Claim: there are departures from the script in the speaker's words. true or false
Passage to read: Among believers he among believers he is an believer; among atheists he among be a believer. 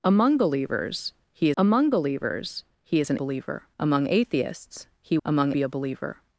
false